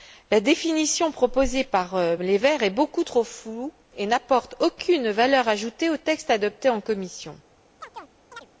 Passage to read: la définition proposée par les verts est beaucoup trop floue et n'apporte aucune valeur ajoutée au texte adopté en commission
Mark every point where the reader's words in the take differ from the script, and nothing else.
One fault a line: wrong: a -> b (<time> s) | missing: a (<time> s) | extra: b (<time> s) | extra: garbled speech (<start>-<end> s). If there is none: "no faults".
no faults